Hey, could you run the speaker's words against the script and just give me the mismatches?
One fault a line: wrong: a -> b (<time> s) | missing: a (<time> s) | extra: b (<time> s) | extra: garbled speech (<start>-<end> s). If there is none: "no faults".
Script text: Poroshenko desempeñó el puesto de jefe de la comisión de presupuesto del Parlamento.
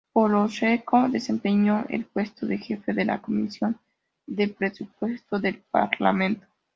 no faults